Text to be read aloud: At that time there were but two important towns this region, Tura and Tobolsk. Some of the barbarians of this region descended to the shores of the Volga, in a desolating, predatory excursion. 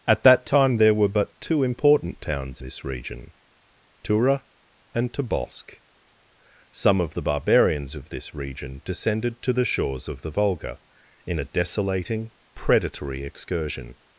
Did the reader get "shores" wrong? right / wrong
right